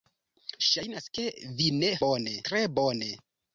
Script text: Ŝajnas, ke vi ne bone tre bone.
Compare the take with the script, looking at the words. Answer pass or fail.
pass